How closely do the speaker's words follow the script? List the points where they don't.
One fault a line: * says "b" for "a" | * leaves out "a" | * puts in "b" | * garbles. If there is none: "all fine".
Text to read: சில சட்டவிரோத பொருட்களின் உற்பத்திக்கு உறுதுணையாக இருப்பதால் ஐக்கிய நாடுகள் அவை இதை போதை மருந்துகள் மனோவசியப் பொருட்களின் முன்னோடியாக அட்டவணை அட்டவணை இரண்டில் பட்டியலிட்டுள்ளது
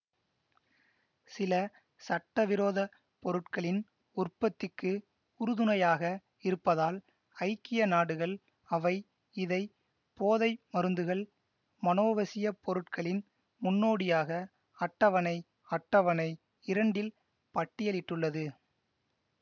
all fine